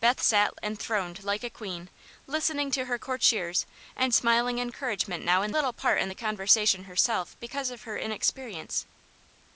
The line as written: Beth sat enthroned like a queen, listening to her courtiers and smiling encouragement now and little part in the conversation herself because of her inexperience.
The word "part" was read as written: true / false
true